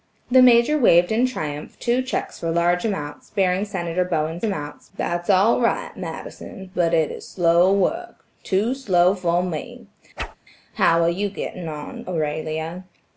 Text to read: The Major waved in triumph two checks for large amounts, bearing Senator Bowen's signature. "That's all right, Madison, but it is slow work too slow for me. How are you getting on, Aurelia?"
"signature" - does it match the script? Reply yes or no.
no